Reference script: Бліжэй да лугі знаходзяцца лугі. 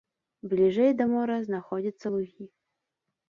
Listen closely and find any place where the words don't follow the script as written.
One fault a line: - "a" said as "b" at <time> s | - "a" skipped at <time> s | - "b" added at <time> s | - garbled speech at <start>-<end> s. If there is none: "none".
- "лугі" said as "мора" at 1.1 s